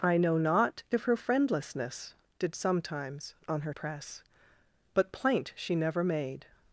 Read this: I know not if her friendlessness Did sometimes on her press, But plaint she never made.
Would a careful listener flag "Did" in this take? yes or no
no